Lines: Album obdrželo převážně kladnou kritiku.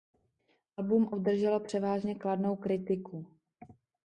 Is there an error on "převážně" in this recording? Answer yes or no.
no